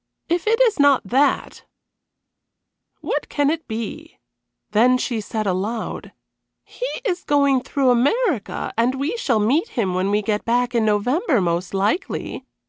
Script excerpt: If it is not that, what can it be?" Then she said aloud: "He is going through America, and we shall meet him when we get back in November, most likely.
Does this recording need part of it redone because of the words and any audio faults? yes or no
no